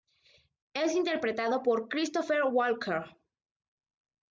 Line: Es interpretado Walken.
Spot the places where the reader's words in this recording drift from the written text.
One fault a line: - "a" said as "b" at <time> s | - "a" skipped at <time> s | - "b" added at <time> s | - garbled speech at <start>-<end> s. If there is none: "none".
- "por Christopher" added at 1.6 s